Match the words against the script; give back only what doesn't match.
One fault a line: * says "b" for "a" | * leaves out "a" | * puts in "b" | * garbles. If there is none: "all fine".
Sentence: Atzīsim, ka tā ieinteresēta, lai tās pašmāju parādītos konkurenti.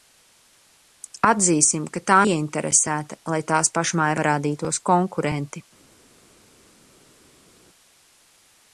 all fine